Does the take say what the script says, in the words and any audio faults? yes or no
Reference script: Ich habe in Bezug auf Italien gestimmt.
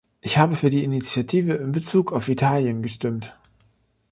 no